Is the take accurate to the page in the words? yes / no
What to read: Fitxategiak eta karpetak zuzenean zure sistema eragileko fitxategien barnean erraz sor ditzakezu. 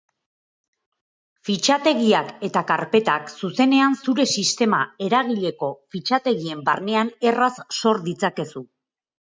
yes